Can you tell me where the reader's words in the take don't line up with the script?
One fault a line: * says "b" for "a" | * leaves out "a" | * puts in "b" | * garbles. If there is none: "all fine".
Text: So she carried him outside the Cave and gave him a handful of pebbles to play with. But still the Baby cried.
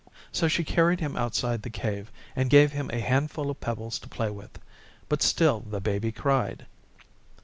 all fine